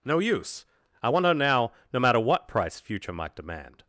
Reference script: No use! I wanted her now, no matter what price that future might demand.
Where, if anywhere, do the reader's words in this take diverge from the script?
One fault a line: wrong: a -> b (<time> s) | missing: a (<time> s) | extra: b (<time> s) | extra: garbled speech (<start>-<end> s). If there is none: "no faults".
wrong: wanted -> want (1.1 s)
missing: that (2.8 s)